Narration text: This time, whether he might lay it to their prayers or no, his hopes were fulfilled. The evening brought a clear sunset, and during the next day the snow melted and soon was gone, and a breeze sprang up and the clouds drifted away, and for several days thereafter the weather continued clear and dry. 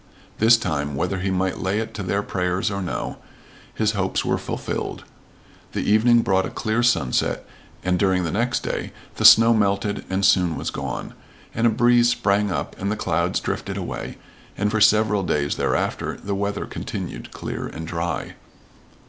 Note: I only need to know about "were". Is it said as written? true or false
true